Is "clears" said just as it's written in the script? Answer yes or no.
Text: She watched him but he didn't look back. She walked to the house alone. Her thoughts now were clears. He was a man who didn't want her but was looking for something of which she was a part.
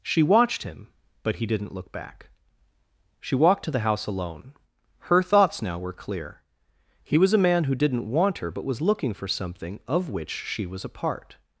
no